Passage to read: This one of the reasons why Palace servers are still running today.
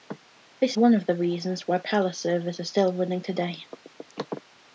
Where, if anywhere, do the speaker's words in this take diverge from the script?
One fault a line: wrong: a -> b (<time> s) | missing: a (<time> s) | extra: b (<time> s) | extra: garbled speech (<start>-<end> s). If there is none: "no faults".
no faults